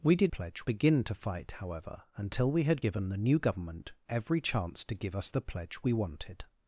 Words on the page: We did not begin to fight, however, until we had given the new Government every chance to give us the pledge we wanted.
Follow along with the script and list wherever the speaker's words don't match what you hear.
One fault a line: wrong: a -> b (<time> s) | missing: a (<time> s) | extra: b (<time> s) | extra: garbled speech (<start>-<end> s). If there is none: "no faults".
wrong: not -> pledge (0.3 s)